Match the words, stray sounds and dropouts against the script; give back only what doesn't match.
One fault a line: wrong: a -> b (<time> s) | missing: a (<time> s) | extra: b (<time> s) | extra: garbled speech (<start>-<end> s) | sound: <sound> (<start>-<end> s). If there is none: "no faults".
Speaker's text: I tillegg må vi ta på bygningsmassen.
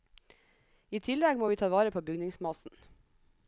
extra: vare (1.7 s)